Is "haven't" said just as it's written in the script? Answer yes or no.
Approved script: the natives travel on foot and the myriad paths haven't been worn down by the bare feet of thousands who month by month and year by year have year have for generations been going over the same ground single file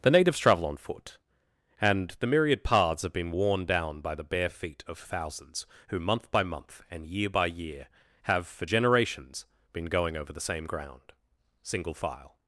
no